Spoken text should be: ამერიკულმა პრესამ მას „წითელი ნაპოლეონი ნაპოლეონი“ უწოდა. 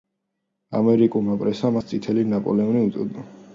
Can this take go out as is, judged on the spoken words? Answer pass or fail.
fail